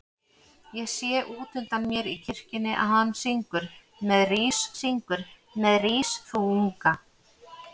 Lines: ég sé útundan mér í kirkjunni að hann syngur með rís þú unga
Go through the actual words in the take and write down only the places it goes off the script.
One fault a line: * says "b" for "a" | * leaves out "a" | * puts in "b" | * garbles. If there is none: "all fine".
* puts in "syngur með rís"